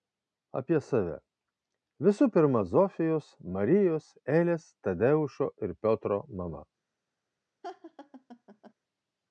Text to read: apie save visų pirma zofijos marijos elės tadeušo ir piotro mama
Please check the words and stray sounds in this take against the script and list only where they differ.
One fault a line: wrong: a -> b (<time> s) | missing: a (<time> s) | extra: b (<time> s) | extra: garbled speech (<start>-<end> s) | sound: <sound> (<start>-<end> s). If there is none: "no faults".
sound: laugh (7.6-8.7 s)